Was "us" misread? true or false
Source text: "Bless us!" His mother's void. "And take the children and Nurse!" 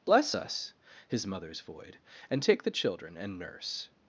false